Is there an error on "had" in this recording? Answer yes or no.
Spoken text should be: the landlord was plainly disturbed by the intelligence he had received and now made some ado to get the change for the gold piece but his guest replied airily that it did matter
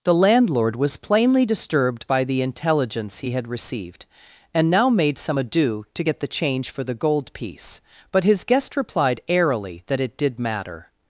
no